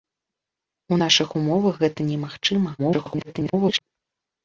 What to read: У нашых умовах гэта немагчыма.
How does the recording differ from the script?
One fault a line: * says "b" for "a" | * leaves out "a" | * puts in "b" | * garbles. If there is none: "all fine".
* garbles